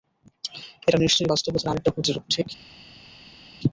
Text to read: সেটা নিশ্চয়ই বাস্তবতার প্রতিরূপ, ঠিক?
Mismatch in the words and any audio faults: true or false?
true